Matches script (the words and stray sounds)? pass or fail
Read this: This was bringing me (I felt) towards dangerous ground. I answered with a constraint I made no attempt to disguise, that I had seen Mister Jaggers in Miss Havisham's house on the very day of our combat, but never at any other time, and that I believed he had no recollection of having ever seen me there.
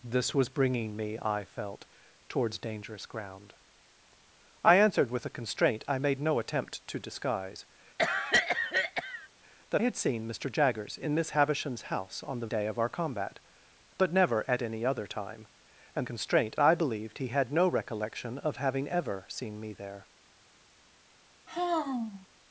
fail